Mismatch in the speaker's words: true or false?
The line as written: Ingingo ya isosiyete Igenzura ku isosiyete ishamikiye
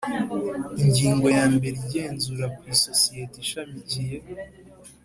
true